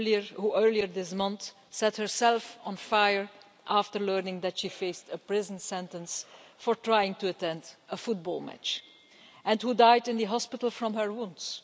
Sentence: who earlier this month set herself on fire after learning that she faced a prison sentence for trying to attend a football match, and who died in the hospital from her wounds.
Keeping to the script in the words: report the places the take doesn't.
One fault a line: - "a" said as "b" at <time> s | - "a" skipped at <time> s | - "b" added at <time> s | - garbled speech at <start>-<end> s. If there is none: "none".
none